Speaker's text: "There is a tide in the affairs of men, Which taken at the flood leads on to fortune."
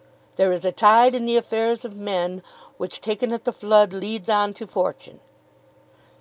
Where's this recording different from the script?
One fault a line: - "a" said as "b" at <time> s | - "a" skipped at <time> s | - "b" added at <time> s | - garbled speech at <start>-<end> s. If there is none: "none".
none